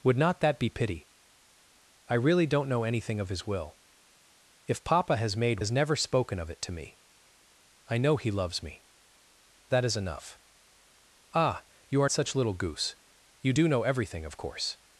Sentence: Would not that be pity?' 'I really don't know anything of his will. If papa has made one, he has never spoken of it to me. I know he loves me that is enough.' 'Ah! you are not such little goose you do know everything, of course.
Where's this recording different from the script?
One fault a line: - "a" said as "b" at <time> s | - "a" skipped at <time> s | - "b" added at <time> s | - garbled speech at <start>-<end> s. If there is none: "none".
- "one he" skipped at 5.6 s
- "not" skipped at 12.1 s